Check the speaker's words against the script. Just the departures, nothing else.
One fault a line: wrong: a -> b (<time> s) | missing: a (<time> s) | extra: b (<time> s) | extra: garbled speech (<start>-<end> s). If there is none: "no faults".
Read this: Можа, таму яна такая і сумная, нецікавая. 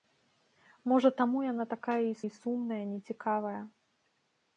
extra: і (2.2 s)